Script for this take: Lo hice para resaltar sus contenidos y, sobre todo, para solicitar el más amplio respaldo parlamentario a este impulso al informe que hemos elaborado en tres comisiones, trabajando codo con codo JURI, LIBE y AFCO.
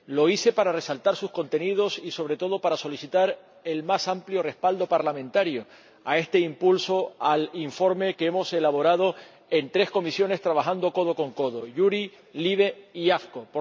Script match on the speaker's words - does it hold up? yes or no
yes